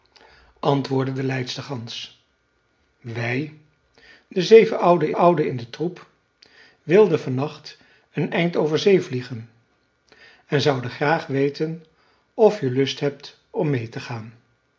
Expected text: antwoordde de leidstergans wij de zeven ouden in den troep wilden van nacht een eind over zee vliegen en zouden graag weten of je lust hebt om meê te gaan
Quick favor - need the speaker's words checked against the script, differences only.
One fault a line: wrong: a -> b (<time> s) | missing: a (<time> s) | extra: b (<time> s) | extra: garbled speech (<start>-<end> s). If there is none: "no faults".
extra: ouden (5.2 s)